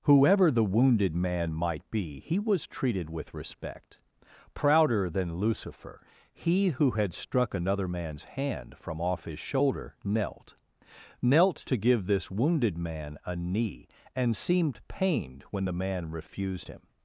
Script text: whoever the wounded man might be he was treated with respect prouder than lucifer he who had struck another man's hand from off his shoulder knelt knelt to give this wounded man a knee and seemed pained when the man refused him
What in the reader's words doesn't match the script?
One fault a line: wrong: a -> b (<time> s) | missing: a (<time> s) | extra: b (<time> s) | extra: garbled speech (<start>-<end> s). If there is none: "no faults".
no faults